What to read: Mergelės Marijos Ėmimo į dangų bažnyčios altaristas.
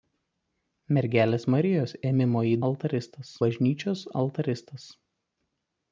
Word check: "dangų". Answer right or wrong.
wrong